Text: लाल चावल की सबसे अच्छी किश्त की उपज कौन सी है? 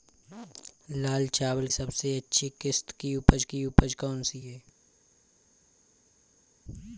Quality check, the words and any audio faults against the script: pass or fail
fail